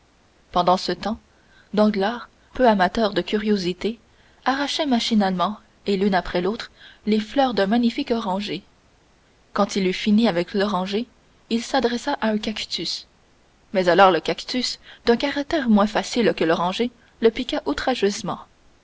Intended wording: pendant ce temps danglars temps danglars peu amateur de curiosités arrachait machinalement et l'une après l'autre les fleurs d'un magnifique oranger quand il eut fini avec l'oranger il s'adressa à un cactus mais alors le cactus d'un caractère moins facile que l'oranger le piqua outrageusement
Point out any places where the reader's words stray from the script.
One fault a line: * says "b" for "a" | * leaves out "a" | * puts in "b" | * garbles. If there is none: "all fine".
* leaves out "temps danglars"